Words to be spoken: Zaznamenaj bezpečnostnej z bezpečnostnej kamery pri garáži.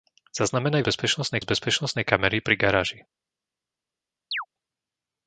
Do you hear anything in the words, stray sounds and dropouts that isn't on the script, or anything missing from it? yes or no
yes